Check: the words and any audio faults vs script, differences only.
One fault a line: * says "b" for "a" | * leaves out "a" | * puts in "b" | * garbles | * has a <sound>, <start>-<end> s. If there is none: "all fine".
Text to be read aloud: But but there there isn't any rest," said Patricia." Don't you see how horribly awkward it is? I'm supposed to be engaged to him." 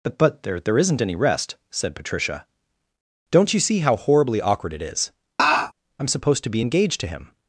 * has a laugh, 5.4-5.7 s